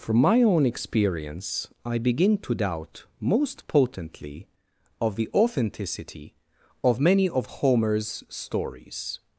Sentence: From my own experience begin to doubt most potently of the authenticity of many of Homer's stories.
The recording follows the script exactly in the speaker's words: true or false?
false